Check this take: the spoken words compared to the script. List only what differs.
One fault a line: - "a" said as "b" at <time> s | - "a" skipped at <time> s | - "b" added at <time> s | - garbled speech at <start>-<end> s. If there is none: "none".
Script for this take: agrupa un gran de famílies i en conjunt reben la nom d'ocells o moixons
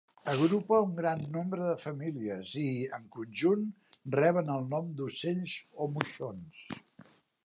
- "nombre" added at 1.3 s
- "la" said as "el" at 4.5 s